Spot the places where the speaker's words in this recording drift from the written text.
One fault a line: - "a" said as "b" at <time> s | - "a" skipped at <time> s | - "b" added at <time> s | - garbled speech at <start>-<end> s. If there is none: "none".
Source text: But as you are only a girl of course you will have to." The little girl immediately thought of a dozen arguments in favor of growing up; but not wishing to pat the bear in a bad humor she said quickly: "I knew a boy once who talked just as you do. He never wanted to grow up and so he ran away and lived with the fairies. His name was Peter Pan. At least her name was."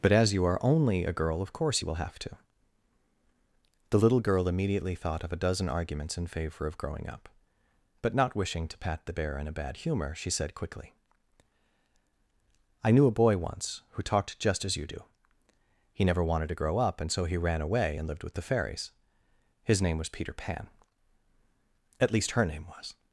none